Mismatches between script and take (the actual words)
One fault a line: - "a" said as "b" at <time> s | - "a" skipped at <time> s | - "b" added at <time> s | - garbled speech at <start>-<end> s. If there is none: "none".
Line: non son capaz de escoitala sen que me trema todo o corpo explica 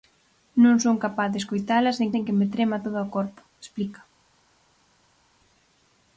- "sen" added at 2.1 s